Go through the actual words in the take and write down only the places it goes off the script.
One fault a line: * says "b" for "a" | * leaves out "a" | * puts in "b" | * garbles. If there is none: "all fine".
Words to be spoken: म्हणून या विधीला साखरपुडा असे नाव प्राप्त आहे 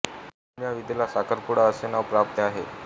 all fine